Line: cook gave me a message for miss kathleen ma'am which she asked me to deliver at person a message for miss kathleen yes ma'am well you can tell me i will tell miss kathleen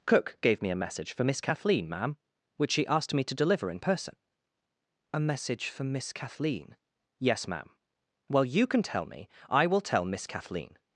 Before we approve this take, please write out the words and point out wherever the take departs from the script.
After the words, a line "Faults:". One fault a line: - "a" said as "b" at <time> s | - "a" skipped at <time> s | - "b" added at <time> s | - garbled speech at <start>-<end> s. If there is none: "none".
cook gave me a message for miss kathleen ma'am which she asked me to deliver in person a message for miss kathleen yes ma'am well you can tell me i will tell miss kathleen
Faults:
- "at" said as "in" at 3.7 s